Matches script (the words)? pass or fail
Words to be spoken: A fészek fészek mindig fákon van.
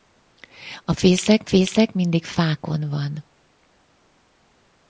pass